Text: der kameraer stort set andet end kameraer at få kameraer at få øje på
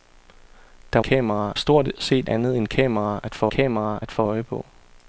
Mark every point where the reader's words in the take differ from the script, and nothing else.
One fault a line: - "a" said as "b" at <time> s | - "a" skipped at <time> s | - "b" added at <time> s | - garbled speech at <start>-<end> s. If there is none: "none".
none